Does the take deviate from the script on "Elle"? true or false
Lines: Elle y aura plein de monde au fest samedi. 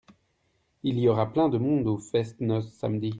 true